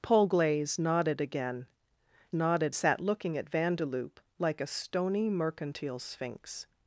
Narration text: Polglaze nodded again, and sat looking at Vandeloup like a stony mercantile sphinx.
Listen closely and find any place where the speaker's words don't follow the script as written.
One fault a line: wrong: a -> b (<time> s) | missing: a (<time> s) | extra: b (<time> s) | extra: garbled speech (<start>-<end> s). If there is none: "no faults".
wrong: and -> nodded (2.3 s)